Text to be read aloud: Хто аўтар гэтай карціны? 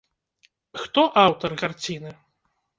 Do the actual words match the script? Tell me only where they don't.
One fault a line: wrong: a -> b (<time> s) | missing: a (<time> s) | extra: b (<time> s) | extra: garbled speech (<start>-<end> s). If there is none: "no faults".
missing: гэтай (1.5 s)